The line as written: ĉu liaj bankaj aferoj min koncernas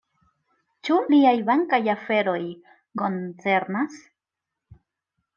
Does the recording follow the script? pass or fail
fail